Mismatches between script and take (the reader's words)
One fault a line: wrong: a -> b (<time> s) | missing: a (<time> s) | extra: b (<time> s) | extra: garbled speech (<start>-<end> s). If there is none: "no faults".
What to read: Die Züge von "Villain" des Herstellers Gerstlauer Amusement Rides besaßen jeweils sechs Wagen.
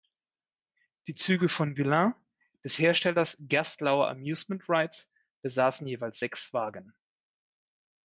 no faults